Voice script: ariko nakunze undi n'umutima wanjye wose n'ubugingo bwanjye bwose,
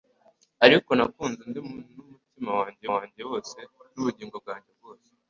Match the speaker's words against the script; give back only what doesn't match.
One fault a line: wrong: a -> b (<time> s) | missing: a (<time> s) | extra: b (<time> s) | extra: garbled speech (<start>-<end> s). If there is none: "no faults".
extra: wanjye (2.9 s)